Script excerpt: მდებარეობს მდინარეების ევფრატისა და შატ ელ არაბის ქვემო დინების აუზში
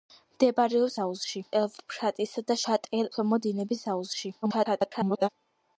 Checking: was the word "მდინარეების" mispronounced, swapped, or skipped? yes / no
yes